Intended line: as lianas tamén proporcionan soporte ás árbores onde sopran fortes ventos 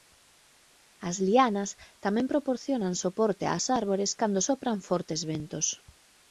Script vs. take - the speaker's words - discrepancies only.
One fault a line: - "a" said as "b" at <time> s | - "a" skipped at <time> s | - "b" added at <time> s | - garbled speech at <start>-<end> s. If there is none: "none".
- "onde" said as "cando" at 4.2 s